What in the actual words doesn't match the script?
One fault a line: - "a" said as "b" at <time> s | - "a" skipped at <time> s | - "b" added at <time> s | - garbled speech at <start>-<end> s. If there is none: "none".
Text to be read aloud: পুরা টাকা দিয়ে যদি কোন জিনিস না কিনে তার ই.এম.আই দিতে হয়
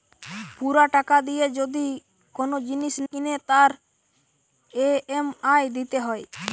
- "না" skipped at 3.0 s